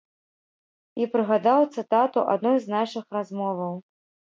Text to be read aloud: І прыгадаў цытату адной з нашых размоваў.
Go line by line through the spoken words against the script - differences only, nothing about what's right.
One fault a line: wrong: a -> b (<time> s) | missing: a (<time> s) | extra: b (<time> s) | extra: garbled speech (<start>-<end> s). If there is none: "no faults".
no faults